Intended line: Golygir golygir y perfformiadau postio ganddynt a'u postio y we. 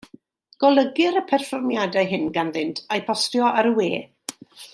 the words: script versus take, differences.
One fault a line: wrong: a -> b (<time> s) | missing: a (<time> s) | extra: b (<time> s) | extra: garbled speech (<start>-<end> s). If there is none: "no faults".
missing: golygir (1.2 s)
wrong: postio -> hyn (2.1 s)
extra: ar (3.5 s)